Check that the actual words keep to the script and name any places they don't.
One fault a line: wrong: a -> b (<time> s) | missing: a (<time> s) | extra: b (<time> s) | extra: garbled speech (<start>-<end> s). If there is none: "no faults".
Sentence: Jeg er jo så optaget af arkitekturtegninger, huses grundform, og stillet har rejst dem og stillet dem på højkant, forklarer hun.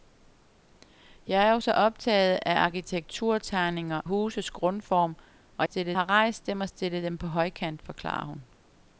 no faults